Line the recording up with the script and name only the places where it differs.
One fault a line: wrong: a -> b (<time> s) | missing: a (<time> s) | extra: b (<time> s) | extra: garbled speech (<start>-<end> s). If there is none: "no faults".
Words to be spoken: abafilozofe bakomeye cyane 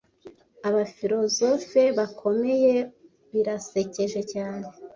extra: birasekeje (3.3 s)